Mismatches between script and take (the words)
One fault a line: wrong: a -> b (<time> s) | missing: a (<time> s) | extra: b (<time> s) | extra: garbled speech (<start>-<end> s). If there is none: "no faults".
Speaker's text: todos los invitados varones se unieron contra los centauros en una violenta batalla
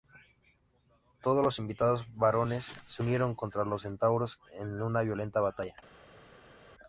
no faults